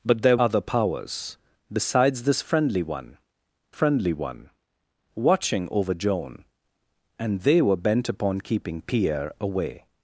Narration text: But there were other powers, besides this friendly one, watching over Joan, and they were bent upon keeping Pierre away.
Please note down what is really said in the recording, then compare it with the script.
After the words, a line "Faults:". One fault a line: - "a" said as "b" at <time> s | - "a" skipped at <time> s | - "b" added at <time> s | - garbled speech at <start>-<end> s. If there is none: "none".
But there other powers, besides this friendly one friendly one, watching over Joan, and they were bent upon keeping Pierre away.
Faults:
- "were" skipped at 0.4 s
- "friendly one" added at 3.7 s